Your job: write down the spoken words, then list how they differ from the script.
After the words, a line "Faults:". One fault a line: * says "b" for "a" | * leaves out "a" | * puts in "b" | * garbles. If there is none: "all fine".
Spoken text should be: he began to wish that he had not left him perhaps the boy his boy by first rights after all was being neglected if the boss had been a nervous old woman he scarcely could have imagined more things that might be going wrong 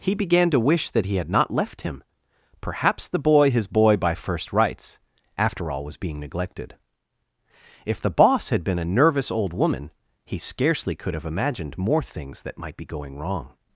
he began to wish that he had not left him perhaps the boy his boy by first rights after all was being neglected if the boss had been a nervous old woman he scarcely could have imagined more things that might be going wrong
Faults:
all fine